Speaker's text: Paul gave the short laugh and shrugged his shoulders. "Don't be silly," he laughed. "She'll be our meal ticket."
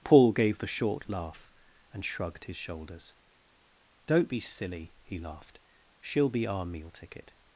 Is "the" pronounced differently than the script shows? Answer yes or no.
no